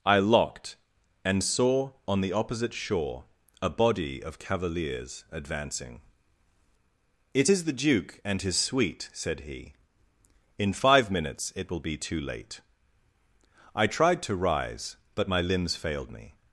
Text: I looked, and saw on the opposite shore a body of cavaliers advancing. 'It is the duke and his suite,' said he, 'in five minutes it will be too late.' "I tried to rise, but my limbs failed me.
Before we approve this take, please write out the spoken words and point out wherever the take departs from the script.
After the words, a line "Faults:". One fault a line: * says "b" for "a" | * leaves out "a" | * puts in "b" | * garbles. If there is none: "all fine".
I locked, and saw on the opposite shore a body of cavaliers advancing. 'It is the duke and his suite,' said he, 'in five minutes it will be too late.' "I tried to rise, but my limbs failed me.
Faults:
* says "locked" for "looked"